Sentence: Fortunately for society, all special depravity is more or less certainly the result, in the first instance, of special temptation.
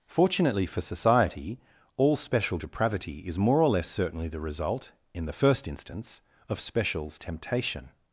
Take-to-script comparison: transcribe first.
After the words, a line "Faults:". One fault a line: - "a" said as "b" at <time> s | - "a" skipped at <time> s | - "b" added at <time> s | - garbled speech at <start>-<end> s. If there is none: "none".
Fortunately for society, all special depravity is more or less certainly the result, in the first instance, of specials temptation.
Faults:
- "special" said as "specials" at 6.6 s